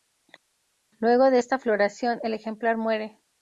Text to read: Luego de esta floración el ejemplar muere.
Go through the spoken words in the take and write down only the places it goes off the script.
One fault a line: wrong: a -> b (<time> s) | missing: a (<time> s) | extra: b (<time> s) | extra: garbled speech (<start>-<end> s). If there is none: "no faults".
no faults